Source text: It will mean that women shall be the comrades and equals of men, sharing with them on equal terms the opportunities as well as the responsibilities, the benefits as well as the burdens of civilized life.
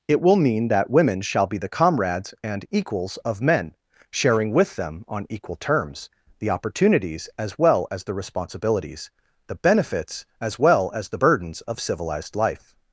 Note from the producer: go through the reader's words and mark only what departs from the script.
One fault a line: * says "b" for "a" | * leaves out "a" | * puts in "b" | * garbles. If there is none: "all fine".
all fine